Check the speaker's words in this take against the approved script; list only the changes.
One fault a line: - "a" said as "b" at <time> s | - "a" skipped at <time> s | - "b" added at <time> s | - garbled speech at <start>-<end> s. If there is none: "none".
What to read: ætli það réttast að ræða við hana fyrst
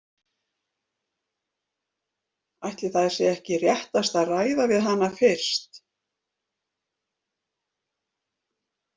- "sé ekki" added at 3.2 s